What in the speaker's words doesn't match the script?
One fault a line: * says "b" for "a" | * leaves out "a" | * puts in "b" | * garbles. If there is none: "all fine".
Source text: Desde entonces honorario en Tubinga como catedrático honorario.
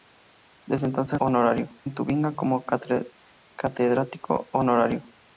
all fine